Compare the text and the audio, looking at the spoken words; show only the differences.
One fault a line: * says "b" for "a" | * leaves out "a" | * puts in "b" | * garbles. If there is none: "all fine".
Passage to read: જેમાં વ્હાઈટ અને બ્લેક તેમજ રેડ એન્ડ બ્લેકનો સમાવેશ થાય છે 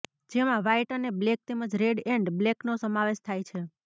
all fine